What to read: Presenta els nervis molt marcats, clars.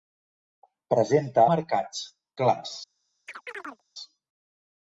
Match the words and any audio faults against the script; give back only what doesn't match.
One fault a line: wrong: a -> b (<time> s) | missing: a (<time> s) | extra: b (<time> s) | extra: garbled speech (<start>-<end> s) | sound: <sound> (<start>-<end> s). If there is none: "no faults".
missing: els nervis molt (1.4 s)
sound: chirp (3.3-3.8 s)